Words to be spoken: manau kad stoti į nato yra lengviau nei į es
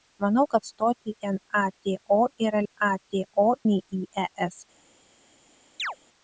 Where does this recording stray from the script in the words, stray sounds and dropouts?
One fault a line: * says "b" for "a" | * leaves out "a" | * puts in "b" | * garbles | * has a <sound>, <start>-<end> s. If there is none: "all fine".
* says "nato" for "lengviau"
* has a chirp, 5.8-6.0 s